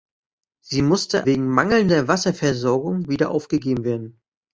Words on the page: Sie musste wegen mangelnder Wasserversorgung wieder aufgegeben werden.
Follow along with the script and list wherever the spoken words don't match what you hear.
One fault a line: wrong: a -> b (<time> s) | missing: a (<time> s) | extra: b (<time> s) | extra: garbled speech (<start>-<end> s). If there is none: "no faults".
no faults